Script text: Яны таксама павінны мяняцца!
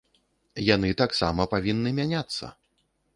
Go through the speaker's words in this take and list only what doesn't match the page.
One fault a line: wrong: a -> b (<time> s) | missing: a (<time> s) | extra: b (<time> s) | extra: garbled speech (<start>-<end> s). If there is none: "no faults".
no faults